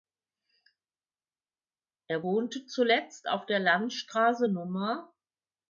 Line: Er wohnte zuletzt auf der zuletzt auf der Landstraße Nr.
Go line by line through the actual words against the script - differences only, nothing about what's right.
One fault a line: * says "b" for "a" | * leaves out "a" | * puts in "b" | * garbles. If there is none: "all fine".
* leaves out "zuletzt auf der"